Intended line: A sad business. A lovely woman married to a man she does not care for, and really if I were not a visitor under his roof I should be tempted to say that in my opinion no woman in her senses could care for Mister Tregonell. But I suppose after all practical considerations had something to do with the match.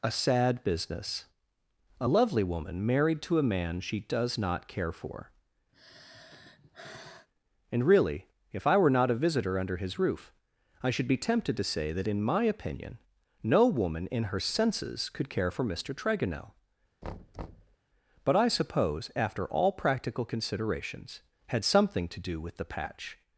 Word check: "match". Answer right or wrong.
wrong